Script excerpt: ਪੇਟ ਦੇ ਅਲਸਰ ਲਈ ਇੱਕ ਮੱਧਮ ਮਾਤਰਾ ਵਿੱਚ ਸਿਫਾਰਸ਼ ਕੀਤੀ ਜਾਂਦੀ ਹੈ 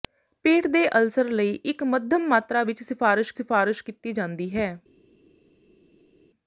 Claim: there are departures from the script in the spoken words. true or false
true